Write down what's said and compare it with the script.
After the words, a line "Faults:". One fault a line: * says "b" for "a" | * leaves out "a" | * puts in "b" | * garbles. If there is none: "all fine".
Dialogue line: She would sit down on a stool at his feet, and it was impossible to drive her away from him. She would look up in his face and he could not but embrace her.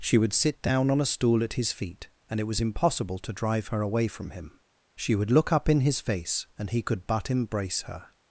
She would sit down on a stool at his feet, and it was impossible to drive her away from him. She would look up in his face and he could but embrace her.
Faults:
* leaves out "not"